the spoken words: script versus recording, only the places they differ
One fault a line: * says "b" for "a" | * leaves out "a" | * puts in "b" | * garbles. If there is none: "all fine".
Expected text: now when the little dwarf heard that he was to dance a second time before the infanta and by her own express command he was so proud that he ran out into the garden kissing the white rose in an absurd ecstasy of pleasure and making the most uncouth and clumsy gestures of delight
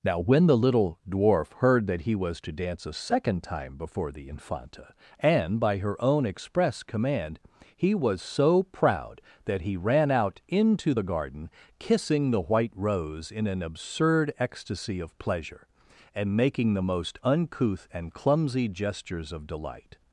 all fine